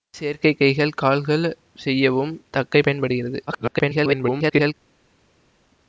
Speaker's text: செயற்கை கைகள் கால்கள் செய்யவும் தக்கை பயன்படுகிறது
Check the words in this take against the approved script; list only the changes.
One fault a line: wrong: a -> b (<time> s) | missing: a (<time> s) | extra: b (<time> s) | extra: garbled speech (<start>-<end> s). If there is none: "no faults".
extra: garbled speech (3.5-4.7 s)